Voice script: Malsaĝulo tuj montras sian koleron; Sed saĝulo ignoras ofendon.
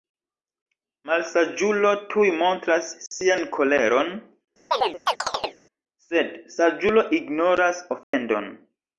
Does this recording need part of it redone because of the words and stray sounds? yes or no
yes